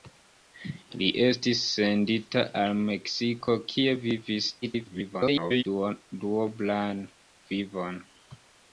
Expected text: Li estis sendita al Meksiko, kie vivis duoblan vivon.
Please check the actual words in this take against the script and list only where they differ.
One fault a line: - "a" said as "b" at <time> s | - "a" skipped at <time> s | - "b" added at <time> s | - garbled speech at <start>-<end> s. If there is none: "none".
- garbled speech at 4.6-5.6 s